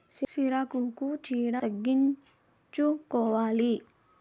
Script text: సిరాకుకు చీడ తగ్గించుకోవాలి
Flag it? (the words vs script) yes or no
no